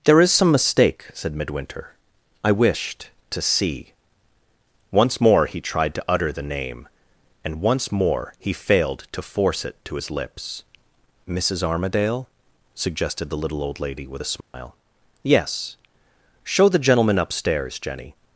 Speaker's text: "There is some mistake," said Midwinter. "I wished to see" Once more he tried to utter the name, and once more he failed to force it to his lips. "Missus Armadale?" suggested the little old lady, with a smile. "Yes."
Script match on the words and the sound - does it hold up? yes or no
no